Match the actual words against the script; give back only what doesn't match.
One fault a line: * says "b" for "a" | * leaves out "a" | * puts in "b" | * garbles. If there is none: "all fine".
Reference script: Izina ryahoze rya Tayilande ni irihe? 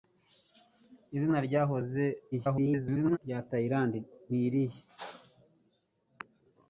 * garbles